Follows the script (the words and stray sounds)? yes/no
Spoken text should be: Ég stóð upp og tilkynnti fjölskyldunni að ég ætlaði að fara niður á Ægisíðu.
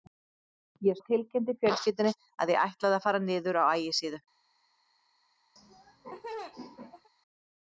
no